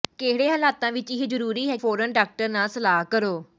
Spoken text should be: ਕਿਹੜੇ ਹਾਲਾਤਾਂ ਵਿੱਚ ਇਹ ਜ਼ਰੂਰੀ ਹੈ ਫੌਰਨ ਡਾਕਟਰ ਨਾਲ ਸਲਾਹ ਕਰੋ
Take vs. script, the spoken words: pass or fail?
pass